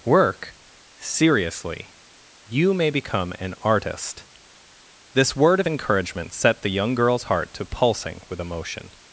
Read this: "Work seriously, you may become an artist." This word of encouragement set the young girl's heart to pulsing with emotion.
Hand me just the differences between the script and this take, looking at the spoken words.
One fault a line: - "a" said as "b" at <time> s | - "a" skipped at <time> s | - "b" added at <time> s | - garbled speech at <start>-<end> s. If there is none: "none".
none